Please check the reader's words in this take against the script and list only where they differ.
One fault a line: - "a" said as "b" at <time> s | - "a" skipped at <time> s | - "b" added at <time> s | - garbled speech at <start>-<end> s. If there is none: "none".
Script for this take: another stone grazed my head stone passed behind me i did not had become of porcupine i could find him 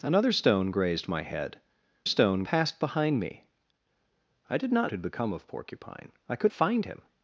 none